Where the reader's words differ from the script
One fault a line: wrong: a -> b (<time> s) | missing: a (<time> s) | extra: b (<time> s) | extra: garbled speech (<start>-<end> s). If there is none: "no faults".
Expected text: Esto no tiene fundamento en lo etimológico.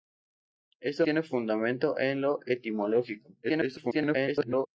missing: no (1.1 s)
extra: garbled speech (3.4-4.7 s)